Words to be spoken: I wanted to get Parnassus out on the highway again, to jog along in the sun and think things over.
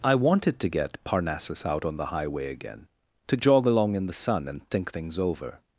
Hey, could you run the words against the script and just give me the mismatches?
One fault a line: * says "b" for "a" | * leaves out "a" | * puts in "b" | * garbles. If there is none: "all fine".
all fine